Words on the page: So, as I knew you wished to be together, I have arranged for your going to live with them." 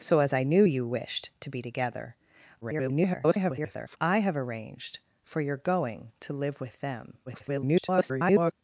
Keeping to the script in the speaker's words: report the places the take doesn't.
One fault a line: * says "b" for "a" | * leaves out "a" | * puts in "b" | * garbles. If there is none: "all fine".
* garbles
* garbles